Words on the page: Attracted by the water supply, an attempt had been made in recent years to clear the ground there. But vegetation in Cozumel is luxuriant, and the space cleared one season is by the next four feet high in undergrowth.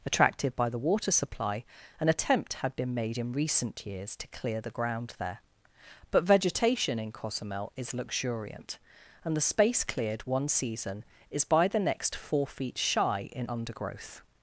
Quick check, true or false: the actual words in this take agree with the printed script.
false